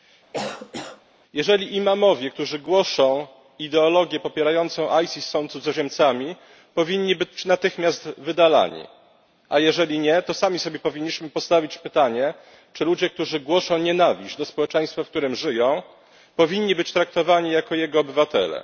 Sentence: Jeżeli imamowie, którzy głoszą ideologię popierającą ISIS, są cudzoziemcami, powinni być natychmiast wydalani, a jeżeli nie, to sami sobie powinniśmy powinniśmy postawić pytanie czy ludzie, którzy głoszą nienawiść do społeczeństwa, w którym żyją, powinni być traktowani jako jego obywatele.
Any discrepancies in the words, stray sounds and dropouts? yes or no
yes